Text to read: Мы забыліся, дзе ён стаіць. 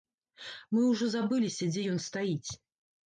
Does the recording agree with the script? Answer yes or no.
no